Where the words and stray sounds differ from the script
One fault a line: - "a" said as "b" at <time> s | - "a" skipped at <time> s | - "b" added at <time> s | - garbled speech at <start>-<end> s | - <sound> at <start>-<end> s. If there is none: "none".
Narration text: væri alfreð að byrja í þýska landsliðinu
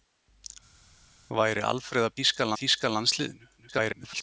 - "byrja" said as "þýska" at 2.2 s
- garbled speech at 3.6-4.2 s